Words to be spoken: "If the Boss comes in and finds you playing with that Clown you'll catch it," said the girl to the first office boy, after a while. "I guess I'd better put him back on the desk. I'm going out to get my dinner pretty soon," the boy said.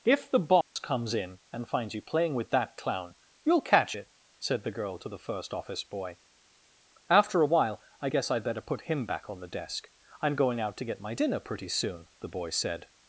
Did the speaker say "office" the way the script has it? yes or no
yes